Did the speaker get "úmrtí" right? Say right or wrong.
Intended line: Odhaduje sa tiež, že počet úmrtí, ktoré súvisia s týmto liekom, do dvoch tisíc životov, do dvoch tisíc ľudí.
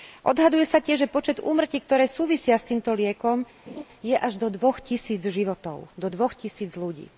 right